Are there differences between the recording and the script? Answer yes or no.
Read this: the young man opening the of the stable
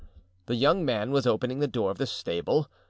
yes